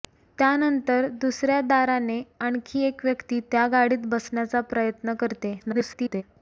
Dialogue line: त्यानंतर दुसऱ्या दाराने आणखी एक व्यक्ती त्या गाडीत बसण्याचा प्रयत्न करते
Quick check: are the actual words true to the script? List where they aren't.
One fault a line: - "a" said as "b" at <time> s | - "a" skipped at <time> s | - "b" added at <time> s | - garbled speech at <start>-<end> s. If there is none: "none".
- garbled speech at 5.6-6.2 s